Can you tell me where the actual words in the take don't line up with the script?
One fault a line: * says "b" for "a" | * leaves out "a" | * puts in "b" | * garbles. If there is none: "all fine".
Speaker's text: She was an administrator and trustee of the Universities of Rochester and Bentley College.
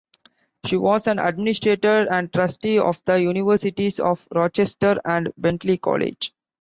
all fine